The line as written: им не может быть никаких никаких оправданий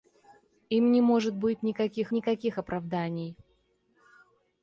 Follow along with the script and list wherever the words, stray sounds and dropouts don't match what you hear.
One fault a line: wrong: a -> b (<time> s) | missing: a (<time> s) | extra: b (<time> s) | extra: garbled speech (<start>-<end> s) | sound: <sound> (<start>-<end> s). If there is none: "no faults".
no faults